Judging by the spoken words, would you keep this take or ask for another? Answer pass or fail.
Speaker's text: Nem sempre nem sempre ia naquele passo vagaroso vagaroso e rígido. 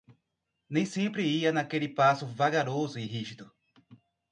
fail